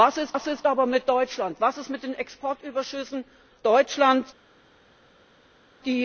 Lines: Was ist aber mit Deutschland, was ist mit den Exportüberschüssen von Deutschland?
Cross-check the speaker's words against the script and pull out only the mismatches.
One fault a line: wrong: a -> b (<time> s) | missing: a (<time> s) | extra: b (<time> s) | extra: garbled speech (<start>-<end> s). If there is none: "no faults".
extra: was ist (0.3 s)
missing: von (3.2 s)